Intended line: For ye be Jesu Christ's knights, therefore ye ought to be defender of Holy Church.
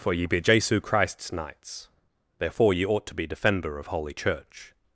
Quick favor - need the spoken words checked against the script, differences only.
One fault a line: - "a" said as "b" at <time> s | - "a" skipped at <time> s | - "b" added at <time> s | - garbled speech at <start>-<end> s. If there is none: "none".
none